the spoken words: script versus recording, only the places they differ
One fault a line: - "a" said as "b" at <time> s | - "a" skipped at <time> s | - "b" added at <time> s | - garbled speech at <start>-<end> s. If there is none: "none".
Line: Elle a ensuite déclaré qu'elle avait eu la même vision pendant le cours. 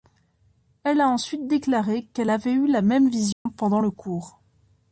none